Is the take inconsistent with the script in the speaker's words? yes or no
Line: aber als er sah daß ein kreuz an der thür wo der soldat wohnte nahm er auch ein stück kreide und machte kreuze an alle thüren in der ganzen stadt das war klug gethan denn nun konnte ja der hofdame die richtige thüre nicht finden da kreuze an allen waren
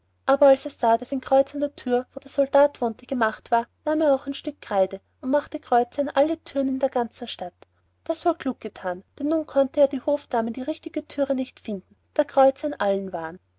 yes